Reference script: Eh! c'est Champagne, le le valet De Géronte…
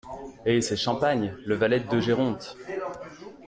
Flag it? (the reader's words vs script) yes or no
yes